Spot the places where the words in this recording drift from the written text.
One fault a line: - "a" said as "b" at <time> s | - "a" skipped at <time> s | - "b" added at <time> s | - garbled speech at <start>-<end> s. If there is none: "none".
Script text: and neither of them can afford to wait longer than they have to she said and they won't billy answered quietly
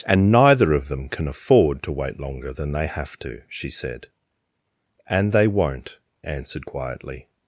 - "billy" skipped at 6.0 s